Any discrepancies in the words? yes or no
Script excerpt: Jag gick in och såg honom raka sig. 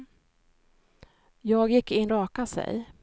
yes